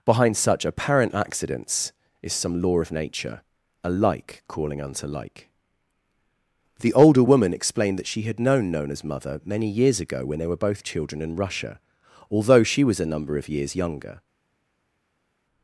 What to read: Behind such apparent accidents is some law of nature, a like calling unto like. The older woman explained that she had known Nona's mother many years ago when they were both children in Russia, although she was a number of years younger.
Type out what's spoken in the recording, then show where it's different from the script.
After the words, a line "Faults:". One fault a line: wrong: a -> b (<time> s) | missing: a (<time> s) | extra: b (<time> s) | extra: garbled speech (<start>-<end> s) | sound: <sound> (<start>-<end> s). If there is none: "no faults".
Behind such apparent accidents is some law of nature, a like calling unto like. The older woman explained that she had known Nona's mother many years ago when they were both children in Russia, although she was a number of years younger.
Faults:
no faults